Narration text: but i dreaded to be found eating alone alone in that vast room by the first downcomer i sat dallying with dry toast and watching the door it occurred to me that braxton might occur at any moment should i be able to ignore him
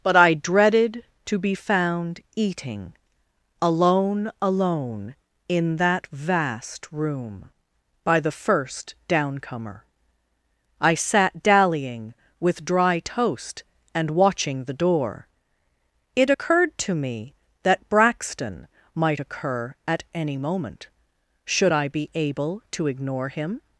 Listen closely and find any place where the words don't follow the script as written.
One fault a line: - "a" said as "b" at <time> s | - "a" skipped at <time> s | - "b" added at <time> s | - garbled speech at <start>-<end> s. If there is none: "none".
none